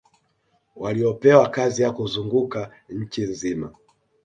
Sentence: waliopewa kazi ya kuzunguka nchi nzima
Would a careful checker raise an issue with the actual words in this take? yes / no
no